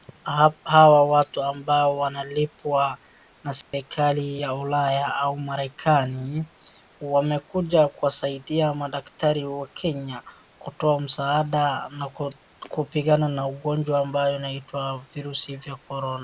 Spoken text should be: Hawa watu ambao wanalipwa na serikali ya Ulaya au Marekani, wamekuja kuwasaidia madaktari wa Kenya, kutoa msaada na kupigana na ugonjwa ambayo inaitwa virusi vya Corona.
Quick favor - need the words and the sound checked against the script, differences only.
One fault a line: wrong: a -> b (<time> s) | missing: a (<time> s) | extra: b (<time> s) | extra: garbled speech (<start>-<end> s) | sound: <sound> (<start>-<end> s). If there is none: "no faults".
sound: dropout (3.6-3.7 s)